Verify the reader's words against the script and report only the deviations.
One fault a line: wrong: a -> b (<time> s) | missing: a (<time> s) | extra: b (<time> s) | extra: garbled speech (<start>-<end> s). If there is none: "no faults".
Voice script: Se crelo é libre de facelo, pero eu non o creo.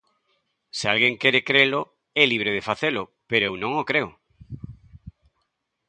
extra: alguén quere (0.9 s)